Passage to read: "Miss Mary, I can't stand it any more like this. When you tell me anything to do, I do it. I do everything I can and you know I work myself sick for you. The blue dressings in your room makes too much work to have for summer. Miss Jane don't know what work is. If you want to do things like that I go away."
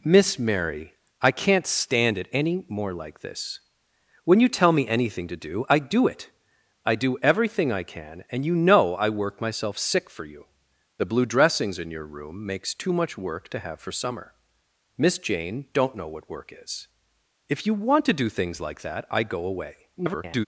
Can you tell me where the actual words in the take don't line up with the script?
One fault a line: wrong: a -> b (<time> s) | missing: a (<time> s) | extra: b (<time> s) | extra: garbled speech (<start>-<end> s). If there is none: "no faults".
extra: garbled speech (20.0-20.5 s)